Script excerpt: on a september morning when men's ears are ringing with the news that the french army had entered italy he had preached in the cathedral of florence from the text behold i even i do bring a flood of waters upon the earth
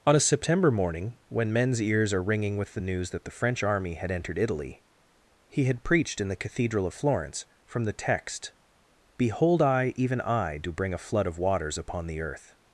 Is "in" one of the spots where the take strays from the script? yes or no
no